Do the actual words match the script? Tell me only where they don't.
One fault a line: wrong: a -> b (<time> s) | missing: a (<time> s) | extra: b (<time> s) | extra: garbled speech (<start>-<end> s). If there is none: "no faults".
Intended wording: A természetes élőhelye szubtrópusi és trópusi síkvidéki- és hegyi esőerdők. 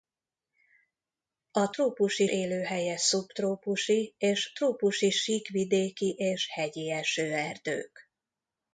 wrong: természetes -> trópusi (1.7 s)